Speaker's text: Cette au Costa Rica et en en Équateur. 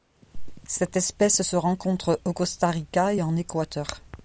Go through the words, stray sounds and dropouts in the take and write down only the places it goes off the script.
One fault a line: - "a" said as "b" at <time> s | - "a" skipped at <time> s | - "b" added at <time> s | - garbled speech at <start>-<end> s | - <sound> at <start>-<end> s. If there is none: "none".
- "espèce se rencontre" added at 1.0 s
- "en" skipped at 3.3 s